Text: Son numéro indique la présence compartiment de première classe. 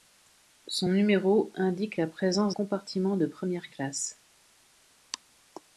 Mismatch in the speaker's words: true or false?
false